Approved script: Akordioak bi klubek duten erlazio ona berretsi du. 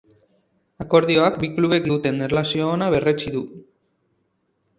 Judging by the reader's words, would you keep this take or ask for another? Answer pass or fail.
pass